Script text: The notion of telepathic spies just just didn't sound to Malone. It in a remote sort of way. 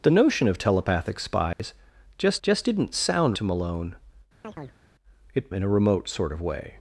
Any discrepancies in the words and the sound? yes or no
yes